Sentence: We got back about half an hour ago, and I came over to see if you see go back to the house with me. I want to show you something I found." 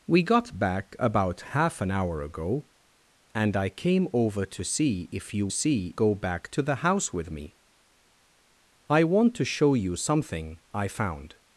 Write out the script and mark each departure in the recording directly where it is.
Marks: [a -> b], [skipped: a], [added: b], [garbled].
We got back about half an hour ago, and I came over to see if you see go back to the house with me. I want to show you something I found."